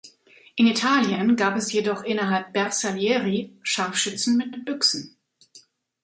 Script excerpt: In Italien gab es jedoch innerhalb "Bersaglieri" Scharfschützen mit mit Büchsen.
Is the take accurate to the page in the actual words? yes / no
yes